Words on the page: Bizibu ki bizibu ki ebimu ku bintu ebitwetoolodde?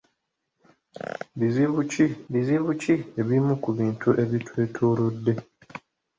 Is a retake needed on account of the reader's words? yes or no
no